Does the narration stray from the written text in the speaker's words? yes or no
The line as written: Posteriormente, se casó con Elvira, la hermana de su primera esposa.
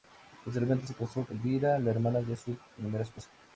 yes